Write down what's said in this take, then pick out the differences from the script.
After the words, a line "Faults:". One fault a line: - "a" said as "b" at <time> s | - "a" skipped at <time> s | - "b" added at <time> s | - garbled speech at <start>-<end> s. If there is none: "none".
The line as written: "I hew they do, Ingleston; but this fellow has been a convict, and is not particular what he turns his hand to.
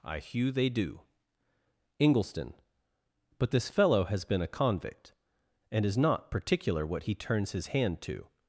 "I hew they do, Ingleston; but this fellow has been a convict, and is not particular what he turns his hand to.
Faults:
none